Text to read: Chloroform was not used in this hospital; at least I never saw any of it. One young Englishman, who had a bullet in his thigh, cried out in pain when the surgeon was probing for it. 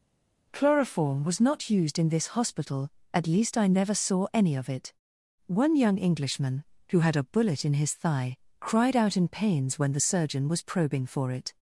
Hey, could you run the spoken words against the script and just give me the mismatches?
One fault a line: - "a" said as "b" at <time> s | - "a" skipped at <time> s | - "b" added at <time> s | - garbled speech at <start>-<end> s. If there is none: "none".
- "pain" said as "pains" at 9.3 s